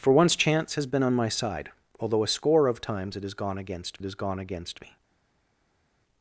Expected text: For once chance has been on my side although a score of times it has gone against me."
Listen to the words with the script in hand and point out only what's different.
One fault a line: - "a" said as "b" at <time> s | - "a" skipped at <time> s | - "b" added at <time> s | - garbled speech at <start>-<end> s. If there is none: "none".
- "has gone against" added at 4.0 s